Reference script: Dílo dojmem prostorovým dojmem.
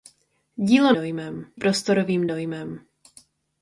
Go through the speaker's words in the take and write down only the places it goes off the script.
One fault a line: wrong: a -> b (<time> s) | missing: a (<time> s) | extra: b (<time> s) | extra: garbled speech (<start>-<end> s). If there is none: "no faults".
no faults